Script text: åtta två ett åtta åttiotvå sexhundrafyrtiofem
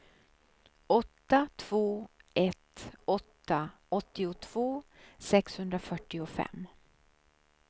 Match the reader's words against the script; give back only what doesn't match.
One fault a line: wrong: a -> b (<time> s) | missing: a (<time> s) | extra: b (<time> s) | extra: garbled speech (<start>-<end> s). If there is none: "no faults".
no faults